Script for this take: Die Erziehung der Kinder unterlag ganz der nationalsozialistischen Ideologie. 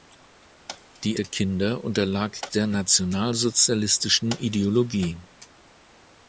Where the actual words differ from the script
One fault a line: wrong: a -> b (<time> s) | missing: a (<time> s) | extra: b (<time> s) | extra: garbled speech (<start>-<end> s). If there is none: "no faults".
missing: Erziehung (1.2 s)
missing: ganz (2.5 s)